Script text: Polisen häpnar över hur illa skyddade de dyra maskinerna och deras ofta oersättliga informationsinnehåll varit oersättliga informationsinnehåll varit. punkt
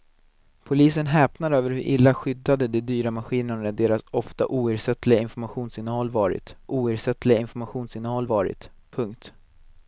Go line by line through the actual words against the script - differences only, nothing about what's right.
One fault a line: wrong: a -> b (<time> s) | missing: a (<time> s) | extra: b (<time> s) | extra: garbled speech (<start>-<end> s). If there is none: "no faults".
no faults